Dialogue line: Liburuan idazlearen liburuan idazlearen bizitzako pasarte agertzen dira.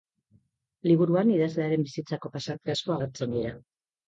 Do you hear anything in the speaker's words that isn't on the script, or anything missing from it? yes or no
yes